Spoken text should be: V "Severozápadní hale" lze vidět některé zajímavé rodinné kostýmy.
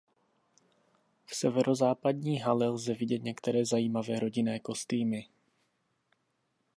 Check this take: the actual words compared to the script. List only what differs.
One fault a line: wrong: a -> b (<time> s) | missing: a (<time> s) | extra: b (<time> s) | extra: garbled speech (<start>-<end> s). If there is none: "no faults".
no faults